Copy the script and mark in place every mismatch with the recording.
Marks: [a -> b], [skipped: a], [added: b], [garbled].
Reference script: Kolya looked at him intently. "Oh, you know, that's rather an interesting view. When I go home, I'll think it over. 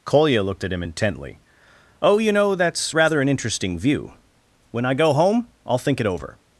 Kolya looked at him intently. "Oh, you know, that's rather an interesting view. When I go home, I'll think it over.